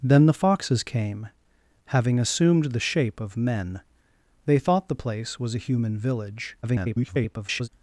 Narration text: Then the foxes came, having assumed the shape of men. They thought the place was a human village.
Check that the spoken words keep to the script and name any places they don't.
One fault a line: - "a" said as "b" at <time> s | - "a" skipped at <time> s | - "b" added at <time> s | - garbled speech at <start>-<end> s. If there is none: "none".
- garbled speech at 6.6-7.7 s